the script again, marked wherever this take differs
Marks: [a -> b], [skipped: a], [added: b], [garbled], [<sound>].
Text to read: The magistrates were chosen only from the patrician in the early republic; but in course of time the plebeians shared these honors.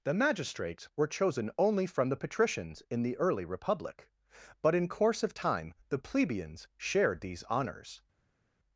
The magistrates were chosen only from the [patrician -> patricians] in the early republic; but in course of time the plebeians shared these honors.